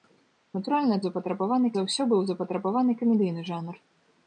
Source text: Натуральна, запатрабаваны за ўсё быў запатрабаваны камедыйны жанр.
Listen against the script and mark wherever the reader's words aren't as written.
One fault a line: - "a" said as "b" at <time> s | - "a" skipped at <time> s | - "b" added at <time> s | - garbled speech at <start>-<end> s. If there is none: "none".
none